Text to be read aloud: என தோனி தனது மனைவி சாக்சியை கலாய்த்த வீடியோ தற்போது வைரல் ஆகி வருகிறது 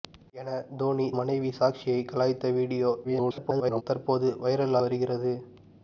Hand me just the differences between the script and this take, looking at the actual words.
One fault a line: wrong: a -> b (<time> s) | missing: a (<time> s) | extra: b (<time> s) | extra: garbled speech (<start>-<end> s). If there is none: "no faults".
missing: தனது (1.1 s)
extra: garbled speech (3.0-3.8 s)
missing: ஆகி (4.8 s)